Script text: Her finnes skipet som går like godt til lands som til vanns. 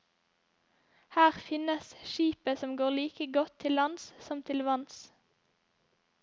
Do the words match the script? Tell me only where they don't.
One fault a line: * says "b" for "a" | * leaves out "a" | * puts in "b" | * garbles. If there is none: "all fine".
all fine